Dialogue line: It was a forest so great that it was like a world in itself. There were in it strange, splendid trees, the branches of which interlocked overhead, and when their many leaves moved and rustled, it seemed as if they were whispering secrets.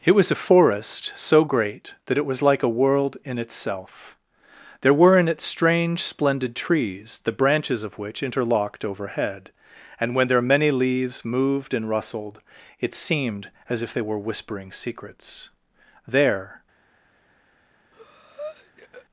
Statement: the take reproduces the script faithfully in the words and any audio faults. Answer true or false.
false